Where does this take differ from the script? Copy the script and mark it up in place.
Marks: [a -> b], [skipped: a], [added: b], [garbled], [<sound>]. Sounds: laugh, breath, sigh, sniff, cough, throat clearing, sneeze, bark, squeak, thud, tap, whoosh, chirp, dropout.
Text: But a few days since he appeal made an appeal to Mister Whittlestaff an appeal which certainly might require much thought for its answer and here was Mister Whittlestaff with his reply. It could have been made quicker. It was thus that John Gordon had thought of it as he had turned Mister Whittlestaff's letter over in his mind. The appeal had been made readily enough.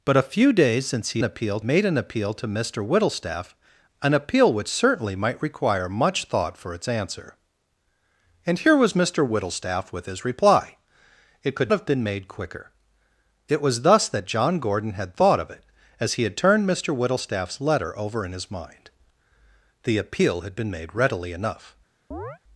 But a few days since he appeal made an appeal to Mister Whittlestaff an appeal which certainly might require much thought for its answer and here was Mister Whittlestaff with his reply. It could have been made quicker. It was thus that John Gordon had thought of it as he had turned Mister Whittlestaff's letter over in his mind. The appeal had been made readily enough. [chirp]